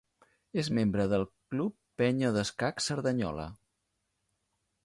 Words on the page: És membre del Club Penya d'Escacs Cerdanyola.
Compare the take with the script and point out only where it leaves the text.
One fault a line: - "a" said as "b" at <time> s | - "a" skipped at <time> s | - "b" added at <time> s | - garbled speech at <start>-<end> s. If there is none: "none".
none